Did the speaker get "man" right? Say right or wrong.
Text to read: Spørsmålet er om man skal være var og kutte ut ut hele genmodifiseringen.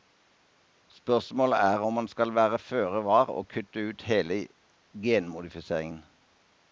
right